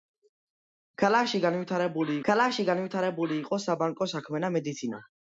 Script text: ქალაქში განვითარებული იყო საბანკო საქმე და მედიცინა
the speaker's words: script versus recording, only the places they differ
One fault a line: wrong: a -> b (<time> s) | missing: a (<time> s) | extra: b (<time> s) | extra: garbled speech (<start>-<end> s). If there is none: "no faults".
extra: ქალაქში განვითარებული (2.3 s)